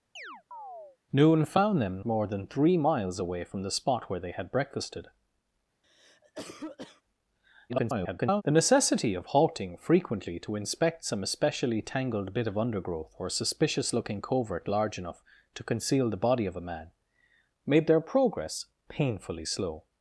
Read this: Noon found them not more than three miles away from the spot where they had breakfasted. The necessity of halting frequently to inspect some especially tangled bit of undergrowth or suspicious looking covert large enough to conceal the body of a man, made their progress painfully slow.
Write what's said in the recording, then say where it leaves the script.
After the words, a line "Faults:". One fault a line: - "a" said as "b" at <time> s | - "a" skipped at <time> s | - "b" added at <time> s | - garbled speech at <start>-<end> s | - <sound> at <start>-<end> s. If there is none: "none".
Noon found them more than three miles away from the spot where they had breakfasted. [garbled] The necessity of halting frequently to inspect some especially tangled bit of undergrowth or suspicious looking covert large enough to conceal the body of a man, made their progress painfully slow.
Faults:
- chirp at 0.2-1.0 s
- "not" skipped at 2.0 s
- cough at 5.8-7.0 s
- garbled speech at 7.7-8.4 s